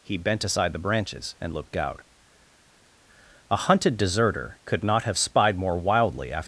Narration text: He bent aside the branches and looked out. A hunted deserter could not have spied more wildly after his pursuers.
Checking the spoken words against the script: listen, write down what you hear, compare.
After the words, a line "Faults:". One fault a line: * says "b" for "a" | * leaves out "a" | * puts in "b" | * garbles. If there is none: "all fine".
He bent aside the branches and looked out. A hunted deserter could not have spied more wildly after.
Faults:
* leaves out "his pursuers"